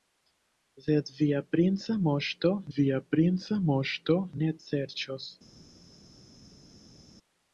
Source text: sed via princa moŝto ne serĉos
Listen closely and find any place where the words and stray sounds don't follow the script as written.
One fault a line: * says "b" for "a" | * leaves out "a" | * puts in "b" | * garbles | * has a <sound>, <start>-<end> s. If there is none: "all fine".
* puts in "via princa moŝto"